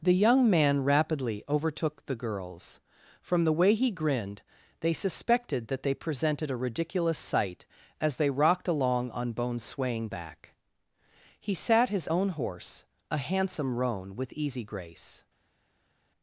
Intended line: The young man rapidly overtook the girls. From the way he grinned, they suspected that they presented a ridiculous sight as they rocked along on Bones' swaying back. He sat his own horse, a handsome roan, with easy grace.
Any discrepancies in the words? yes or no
no